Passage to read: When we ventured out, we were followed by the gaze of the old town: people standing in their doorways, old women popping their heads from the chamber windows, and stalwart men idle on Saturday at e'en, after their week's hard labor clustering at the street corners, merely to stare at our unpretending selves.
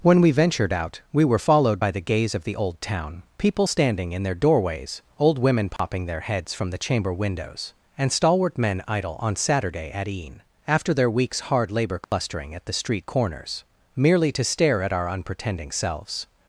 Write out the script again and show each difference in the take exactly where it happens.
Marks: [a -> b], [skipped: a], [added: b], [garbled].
When we ventured out, we were followed by the gaze of the old town: people standing in their doorways, old women popping their heads from the chamber windows, and stalwart men idle on Saturday at e'en, after their week's hard labor clustering at the street corners, merely to stare at our unpretending selves.